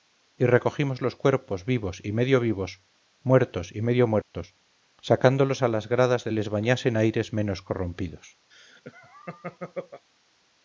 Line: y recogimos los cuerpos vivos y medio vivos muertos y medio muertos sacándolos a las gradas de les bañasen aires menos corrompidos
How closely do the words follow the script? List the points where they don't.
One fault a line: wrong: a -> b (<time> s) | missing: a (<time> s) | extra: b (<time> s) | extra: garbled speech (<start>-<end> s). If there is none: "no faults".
no faults